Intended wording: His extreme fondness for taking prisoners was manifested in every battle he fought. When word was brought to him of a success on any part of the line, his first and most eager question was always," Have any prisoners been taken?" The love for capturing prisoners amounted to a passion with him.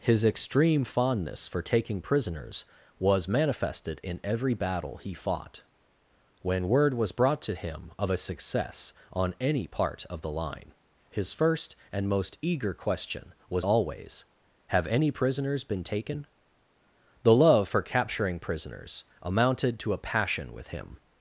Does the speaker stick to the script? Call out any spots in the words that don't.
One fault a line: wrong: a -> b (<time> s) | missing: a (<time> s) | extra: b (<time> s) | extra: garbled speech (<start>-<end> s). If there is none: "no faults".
no faults